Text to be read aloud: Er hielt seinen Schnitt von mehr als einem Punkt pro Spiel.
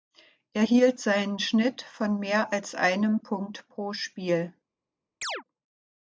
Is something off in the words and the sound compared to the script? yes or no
yes